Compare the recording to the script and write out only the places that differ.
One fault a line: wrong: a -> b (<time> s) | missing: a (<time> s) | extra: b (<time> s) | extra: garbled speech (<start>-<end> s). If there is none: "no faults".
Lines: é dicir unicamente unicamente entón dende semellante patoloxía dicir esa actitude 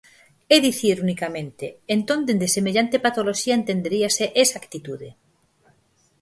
missing: unicamente (1.7 s)
wrong: dicir -> entenderíase (3.6 s)